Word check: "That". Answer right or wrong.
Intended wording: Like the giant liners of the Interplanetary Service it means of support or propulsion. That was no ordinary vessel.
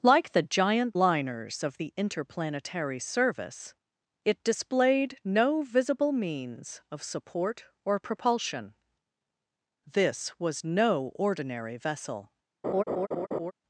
wrong